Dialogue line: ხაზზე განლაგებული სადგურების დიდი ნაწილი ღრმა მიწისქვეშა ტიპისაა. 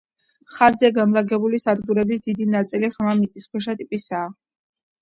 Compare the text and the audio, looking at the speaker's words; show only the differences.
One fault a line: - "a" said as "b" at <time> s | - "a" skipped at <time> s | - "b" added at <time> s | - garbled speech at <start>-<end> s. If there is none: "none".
none